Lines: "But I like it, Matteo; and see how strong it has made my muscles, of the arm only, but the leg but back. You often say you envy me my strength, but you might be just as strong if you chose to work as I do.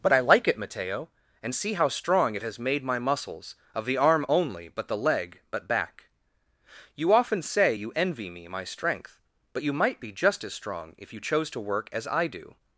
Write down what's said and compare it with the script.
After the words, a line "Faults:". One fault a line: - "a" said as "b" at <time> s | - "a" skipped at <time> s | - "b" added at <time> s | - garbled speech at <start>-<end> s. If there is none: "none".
"But I like it, Matteo; and see how strong it has made my muscles, of the arm only, but the leg but back. You often say you envy me my strength, but you might be just as strong if you chose to work as I do.
Faults:
none